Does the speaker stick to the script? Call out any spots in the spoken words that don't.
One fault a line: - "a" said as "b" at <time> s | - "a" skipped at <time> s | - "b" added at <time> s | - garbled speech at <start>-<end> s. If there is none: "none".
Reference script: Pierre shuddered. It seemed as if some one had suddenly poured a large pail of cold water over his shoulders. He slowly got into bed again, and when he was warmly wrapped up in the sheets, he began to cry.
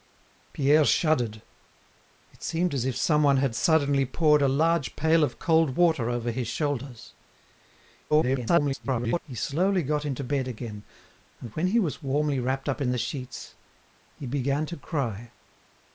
- garbled speech at 8.1-9.2 s